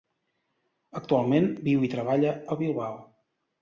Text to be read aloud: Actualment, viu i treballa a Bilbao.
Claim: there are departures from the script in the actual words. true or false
false